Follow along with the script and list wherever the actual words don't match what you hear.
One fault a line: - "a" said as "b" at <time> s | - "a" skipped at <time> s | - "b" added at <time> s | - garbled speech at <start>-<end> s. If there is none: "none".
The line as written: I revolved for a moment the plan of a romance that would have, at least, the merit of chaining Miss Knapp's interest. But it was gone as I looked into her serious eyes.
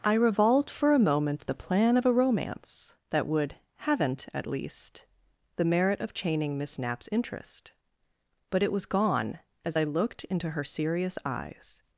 - "have" said as "haven't" at 3.8 s